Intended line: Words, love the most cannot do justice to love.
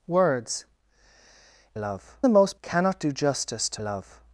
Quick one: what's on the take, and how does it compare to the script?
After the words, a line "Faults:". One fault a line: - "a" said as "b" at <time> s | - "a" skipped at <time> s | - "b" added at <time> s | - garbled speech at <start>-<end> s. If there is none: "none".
Words, love the most cannot do justice to love.
Faults:
none